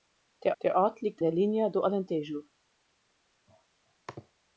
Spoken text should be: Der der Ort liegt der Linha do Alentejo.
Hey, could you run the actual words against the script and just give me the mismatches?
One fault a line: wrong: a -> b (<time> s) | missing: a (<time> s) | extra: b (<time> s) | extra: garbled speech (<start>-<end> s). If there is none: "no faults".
no faults